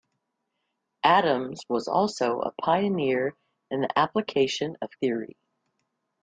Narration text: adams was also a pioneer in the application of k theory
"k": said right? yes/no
no